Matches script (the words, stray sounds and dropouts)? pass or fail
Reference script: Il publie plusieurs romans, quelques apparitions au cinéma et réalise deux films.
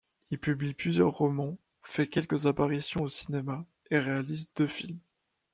fail